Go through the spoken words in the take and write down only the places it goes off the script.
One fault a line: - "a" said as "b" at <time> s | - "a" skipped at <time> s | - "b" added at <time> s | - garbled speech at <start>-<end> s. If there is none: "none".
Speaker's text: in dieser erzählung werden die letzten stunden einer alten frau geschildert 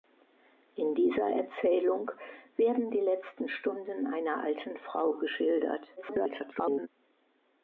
- garbled speech at 6.0-6.9 s